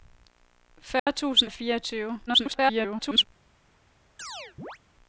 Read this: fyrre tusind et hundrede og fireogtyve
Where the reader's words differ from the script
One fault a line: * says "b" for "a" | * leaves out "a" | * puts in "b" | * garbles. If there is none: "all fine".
* leaves out "et hundrede"
* garbles